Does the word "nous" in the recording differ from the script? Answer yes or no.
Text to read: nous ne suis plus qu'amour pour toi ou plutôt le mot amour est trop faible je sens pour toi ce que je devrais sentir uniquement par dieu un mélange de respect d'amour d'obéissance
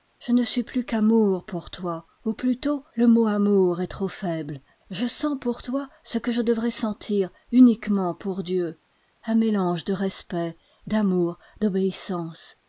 yes